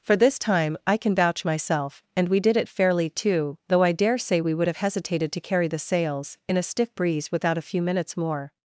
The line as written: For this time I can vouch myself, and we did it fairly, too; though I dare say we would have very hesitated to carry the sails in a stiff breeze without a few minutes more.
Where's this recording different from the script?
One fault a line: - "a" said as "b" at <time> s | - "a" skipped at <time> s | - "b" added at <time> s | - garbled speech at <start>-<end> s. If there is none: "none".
- "very" skipped at 4.8 s